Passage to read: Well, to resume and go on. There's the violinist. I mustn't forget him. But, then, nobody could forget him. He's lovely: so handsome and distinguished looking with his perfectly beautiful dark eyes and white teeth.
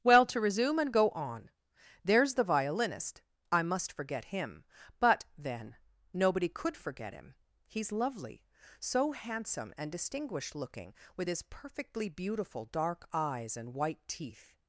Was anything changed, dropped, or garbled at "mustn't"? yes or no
yes